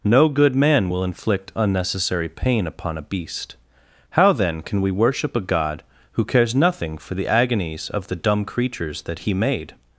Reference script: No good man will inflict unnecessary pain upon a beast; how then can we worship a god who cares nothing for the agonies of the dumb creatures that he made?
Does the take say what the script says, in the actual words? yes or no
yes